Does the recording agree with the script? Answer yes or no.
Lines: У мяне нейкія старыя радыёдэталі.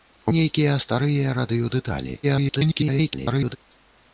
no